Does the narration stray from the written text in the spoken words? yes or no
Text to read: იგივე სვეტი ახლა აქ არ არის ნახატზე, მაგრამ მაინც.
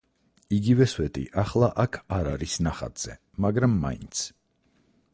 no